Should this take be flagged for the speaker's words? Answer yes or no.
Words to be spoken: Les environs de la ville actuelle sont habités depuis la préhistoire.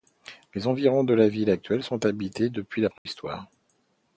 no